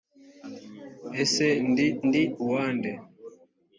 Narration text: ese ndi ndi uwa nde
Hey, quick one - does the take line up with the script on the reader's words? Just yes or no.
yes